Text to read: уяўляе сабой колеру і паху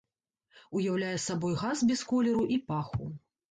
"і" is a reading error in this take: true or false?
false